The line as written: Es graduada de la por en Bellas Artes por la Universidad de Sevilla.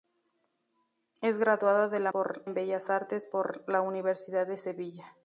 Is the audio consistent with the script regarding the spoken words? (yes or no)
yes